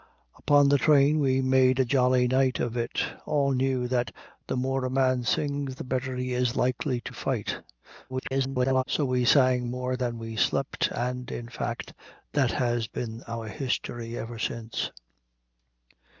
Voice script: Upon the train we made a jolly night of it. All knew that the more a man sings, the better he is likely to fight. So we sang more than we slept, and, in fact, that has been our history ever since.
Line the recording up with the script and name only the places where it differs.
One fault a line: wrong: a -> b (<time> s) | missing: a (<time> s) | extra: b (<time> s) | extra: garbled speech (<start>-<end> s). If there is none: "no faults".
extra: garbled speech (8.1-8.8 s)